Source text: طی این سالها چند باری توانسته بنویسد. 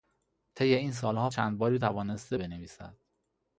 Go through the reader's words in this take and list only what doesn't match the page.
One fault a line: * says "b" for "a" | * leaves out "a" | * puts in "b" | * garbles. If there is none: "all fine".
all fine